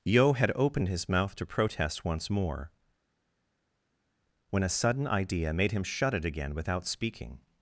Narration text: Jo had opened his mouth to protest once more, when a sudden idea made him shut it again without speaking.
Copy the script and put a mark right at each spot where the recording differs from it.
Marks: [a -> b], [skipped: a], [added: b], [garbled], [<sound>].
[Jo -> Yo] had opened his mouth to protest once more, when a sudden idea made him shut it again without speaking.